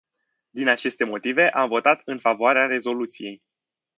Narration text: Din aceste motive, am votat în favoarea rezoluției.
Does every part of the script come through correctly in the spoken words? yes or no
yes